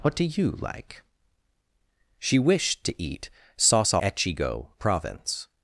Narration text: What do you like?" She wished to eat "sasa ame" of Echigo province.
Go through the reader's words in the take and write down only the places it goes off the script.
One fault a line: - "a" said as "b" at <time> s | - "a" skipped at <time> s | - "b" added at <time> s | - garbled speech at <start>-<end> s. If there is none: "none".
- "ame of" skipped at 4.0 s